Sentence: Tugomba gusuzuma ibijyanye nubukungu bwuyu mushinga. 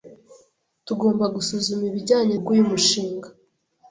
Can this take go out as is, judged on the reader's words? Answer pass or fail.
fail